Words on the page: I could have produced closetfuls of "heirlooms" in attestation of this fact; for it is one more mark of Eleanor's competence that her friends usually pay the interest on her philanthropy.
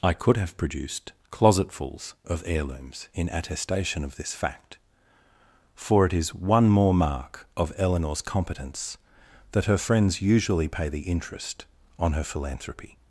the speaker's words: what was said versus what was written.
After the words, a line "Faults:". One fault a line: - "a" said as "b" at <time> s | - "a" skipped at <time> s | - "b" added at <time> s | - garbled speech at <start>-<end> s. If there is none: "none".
I could have produced closetfuls of "heirlooms" in attestation of this fact; for it is one more mark of Eleanor's competence that her friends usually pay the interest on her philanthropy.
Faults:
none